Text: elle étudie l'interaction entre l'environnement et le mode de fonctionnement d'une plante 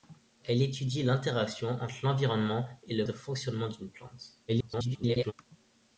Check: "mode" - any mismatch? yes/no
yes